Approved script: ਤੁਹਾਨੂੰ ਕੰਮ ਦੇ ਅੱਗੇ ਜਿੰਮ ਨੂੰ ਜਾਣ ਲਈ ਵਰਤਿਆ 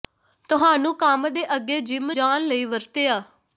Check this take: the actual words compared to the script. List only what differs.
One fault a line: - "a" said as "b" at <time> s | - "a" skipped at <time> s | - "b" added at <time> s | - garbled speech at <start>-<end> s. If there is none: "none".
- "ਨੂੰ" skipped at 2.1 s